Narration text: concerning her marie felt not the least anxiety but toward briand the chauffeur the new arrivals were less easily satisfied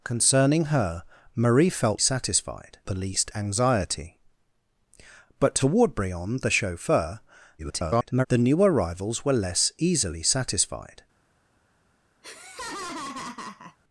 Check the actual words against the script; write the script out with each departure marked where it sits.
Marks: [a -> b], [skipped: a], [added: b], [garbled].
concerning her marie felt [not -> satisfied] the least anxiety but toward briand the chauffeur [garbled] the new arrivals were less easily satisfied